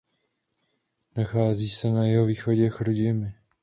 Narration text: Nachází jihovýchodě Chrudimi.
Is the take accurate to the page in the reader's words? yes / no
no